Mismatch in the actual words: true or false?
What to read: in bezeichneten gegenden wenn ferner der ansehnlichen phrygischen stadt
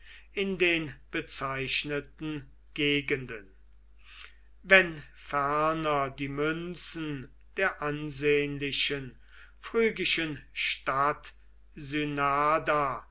true